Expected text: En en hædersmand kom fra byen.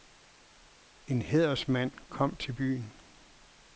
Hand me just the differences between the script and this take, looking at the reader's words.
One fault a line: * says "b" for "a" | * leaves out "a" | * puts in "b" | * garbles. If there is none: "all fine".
* leaves out "en"
* says "til" for "fra"